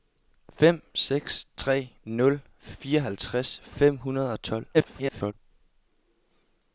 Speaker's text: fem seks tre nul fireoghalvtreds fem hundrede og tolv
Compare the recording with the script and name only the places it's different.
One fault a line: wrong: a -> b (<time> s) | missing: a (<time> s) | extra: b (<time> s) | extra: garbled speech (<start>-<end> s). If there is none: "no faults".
extra: garbled speech (4.7-5.3 s)